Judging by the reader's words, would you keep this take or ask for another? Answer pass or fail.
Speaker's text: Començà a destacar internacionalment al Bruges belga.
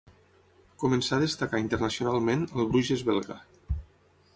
pass